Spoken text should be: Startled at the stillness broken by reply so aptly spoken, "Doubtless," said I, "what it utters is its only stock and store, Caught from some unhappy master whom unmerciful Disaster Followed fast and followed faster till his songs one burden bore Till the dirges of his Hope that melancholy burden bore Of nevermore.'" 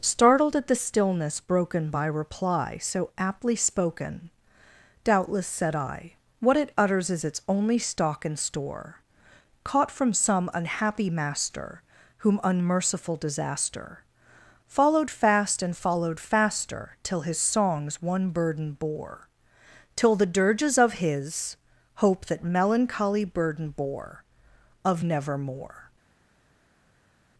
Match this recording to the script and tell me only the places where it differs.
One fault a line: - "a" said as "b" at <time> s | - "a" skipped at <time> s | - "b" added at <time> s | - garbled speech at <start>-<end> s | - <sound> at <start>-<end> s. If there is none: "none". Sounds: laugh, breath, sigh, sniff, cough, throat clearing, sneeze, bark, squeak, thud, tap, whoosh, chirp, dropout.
none